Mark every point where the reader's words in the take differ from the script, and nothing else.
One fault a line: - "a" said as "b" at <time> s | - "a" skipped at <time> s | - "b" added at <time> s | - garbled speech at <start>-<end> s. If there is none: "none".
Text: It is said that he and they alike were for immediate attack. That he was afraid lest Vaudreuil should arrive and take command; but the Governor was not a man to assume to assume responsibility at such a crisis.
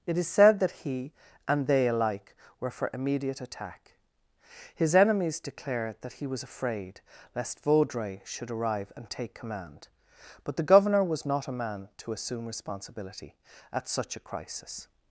- "His enemies declare" added at 4.8 s
- "to assume" skipped at 12.4 s